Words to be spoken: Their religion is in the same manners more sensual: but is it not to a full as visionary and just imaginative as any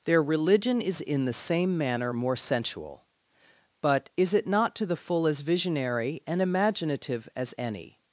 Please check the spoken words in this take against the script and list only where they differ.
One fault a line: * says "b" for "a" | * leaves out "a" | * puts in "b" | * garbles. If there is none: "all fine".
* says "manner" for "manners"
* says "the" for "a"
* leaves out "just"